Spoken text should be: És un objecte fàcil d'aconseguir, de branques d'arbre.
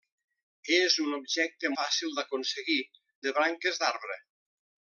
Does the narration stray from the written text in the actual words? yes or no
no